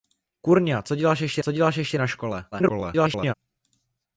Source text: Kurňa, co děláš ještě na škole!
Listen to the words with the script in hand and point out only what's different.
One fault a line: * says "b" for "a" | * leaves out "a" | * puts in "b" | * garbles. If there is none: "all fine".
* puts in "co děláš ještě"
* garbles